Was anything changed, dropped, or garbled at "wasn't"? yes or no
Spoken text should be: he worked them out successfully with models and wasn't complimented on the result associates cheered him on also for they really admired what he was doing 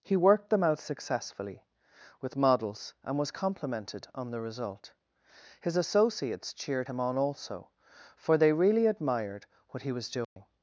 yes